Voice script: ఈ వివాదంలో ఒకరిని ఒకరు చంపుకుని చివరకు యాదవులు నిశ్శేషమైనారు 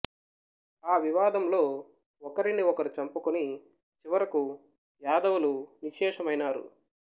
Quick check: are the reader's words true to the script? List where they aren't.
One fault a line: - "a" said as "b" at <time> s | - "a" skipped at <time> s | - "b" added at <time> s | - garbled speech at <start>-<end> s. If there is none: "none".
- "ఈ" said as "ఆ" at 0.8 s